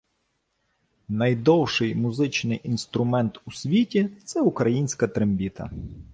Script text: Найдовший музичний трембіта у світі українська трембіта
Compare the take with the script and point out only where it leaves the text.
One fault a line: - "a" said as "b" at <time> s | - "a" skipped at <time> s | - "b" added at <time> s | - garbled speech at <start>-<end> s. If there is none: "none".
- "трембіта" said as "інструмент" at 2.6 s
- "це" added at 4.2 s